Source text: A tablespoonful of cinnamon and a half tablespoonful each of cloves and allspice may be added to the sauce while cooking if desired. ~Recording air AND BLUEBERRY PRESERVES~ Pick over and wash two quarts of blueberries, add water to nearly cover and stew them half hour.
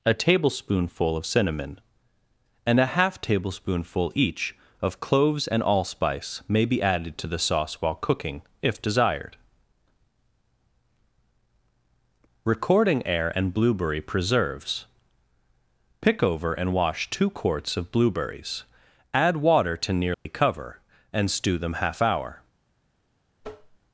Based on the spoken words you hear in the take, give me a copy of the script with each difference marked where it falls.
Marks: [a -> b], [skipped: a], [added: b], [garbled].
A tablespoonful of cinnamon and a half tablespoonful each of cloves and allspice may be added to the sauce while cooking if desired. ~Recording air AND BLUEBERRY PRESERVES~ Pick over and wash two quarts of blueberries, add water to nearly cover and stew them half hour.